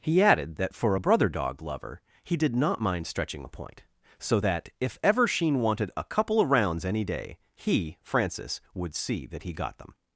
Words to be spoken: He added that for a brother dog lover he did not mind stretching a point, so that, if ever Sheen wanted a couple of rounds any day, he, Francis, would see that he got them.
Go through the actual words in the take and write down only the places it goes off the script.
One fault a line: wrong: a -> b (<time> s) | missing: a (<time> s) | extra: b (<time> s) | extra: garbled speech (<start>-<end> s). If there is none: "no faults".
no faults